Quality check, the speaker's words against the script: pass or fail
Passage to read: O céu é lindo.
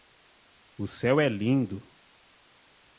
pass